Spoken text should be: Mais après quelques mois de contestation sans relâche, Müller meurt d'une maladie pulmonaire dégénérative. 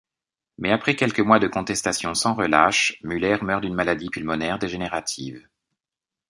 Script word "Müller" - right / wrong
right